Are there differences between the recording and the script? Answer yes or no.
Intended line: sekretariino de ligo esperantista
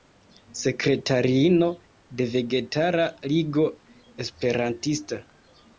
yes